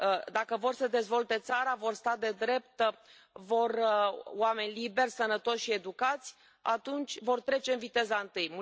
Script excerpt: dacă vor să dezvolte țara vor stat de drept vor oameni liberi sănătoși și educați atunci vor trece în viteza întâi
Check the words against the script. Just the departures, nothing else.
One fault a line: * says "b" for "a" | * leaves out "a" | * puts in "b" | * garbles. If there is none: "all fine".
all fine